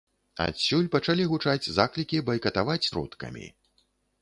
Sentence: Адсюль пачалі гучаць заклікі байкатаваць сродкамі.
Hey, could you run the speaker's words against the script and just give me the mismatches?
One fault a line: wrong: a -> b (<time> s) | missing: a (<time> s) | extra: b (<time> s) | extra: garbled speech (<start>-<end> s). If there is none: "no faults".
no faults